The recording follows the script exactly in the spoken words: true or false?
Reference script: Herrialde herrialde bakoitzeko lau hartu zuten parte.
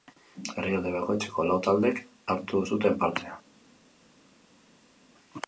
false